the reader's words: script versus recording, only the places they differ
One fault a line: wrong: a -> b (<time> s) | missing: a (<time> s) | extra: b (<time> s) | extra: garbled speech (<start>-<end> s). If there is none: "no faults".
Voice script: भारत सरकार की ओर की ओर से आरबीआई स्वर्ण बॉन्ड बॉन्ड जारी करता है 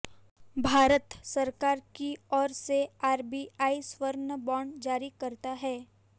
missing: की ओर (2.5 s)
missing: बॉन्ड (4.8 s)